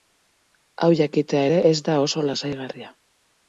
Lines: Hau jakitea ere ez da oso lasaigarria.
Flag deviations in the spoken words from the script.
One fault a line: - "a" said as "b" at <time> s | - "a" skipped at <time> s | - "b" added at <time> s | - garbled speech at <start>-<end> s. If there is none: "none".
none